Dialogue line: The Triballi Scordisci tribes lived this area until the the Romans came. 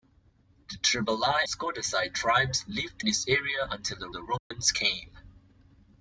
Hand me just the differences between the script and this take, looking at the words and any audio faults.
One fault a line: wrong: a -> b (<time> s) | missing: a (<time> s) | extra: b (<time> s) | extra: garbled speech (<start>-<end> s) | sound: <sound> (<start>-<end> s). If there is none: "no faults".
sound: dropout (4.4-4.5 s)